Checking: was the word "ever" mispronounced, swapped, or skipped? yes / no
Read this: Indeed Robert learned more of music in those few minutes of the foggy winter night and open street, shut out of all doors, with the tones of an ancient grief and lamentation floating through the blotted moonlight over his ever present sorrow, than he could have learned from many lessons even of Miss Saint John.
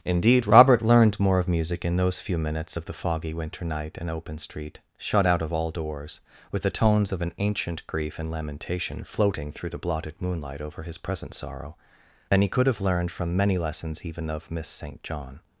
yes